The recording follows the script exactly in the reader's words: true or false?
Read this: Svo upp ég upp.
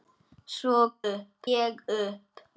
true